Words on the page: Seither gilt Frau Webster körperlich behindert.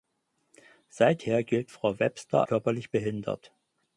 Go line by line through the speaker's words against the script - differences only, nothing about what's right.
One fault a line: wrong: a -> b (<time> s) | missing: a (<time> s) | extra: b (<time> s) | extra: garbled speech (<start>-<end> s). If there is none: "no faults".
no faults